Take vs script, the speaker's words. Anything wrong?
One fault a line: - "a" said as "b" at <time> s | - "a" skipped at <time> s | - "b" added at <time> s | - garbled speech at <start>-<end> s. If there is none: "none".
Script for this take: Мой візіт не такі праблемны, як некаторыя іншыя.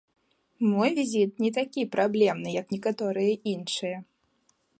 none